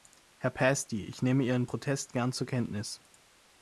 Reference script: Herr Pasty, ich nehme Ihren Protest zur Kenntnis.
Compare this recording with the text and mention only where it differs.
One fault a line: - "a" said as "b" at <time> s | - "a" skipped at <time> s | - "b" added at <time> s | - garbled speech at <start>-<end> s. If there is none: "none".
- "gern" added at 2.1 s